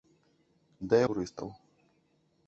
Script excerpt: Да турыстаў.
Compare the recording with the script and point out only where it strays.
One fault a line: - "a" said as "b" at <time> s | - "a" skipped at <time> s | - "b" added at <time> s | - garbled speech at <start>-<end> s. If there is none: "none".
none